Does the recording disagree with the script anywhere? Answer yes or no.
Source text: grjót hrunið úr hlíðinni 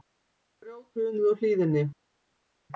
no